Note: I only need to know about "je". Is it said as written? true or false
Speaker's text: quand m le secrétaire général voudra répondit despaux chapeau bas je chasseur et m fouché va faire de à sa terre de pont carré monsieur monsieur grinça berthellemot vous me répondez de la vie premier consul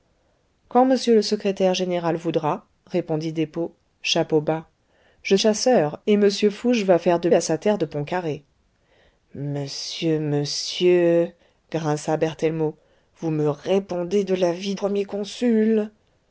true